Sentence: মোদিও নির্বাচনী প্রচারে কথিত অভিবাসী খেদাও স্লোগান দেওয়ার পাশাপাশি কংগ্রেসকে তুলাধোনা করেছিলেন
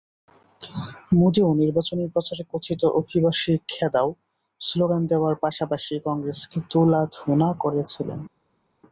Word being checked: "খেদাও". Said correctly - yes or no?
yes